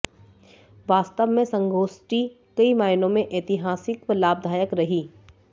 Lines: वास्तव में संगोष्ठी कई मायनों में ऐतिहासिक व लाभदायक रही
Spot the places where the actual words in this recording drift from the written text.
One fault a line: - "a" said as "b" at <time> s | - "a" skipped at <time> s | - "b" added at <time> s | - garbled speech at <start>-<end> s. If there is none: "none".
none